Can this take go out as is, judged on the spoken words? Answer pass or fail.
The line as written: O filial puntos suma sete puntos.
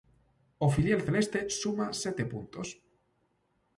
fail